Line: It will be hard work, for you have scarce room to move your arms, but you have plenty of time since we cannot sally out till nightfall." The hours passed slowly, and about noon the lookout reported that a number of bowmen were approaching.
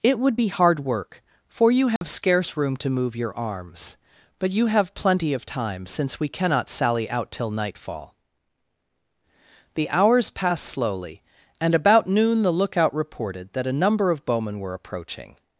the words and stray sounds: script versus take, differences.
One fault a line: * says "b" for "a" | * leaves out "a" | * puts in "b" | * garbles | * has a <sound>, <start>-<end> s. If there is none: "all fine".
* says "would" for "will"
* has a dropout, 2.0-2.0 s